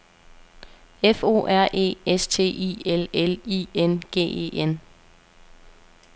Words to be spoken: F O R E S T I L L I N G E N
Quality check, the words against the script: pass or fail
pass